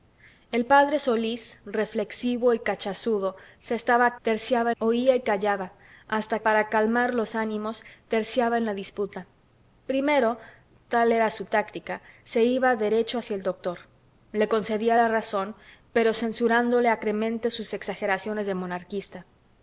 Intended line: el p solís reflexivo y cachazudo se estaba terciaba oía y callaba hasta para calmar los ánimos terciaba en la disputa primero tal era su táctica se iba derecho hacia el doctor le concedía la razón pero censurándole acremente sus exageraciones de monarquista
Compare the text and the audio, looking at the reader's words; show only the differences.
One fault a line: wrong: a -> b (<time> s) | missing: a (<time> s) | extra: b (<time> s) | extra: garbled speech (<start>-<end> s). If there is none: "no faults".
no faults